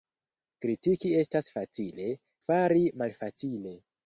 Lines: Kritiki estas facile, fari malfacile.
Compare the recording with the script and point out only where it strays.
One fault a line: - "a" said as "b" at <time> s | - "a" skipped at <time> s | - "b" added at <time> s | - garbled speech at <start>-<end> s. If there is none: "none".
none